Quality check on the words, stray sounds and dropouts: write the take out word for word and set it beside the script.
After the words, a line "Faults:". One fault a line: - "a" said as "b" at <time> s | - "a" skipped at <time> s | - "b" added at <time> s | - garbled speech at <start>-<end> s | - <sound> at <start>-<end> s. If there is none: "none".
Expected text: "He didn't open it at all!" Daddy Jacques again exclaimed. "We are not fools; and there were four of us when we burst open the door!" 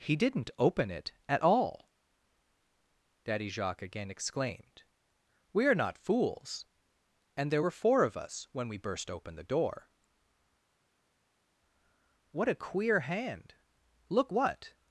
"He didn't open it at all!" Daddy Jacques again exclaimed. "We are not fools; and there were four of us when we burst open the door!" "What a queer hand! Look what
Faults:
- "What a queer hand Look what" added at 12.3 s